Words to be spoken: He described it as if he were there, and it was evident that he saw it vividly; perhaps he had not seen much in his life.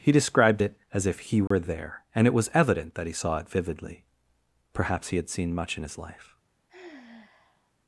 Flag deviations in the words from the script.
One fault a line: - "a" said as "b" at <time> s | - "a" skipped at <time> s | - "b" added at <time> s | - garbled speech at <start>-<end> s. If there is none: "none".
- "not" skipped at 5.3 s